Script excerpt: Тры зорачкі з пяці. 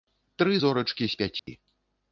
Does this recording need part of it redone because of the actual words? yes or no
no